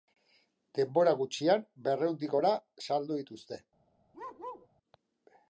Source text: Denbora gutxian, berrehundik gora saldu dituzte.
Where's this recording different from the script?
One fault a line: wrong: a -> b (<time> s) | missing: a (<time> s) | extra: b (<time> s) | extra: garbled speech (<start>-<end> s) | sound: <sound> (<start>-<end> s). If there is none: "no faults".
sound: bark (4.1-4.7 s)